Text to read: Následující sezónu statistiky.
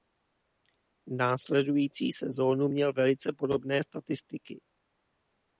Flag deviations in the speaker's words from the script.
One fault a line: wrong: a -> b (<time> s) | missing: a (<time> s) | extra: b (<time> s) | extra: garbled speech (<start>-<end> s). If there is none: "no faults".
extra: měl velice podobné (2.7 s)